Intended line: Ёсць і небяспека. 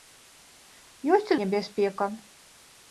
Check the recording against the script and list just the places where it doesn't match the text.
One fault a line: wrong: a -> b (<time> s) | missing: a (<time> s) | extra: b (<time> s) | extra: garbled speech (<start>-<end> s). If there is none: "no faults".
no faults